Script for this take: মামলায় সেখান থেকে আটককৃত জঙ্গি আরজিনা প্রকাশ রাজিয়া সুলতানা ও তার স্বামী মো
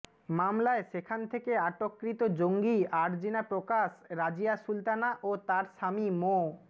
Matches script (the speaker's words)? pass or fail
pass